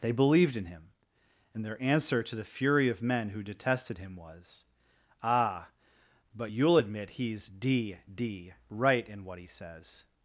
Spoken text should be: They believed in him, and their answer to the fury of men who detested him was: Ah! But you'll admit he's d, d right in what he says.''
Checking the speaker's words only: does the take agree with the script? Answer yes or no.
yes